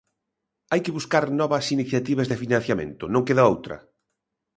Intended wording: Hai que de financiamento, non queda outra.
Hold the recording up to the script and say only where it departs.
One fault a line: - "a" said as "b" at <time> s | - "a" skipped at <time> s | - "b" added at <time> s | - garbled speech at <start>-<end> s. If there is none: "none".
- "buscar novas iniciativas" added at 1.0 s